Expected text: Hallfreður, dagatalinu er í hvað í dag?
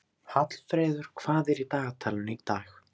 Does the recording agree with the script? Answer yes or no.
no